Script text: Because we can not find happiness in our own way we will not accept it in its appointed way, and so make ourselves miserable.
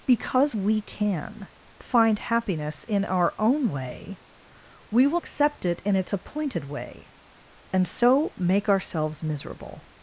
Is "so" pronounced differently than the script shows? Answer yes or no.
no